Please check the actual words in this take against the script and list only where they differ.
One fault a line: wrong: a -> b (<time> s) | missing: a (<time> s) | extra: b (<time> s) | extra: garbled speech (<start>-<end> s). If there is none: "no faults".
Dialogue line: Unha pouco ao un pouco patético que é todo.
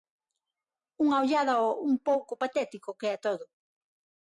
wrong: pouco -> ollada (1.2 s)